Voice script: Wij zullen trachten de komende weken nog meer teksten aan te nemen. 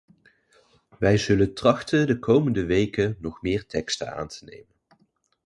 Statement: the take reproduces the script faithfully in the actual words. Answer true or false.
true